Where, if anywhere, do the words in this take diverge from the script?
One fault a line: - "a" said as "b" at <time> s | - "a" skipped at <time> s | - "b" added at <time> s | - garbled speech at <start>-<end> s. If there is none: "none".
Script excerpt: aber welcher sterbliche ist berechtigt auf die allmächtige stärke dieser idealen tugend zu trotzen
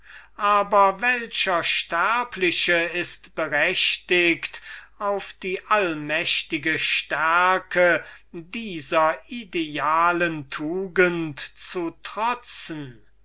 none